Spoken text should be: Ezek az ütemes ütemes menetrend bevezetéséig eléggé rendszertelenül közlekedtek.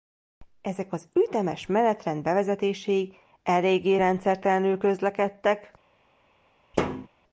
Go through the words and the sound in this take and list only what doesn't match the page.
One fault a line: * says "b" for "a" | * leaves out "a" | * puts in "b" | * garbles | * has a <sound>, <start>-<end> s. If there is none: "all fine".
* leaves out "ütemes"
* has a thud, 6.7-7.1 s